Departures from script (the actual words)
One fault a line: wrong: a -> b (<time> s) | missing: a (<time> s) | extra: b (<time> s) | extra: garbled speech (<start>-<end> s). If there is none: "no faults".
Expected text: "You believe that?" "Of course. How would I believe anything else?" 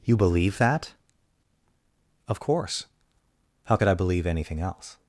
wrong: would -> could (3.7 s)